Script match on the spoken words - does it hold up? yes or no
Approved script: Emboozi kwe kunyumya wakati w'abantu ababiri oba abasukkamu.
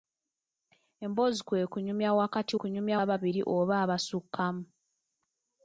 no